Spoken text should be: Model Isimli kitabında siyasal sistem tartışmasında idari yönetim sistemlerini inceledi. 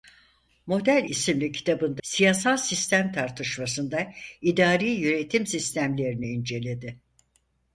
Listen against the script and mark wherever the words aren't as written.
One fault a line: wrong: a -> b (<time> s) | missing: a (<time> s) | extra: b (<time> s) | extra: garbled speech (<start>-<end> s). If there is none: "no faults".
no faults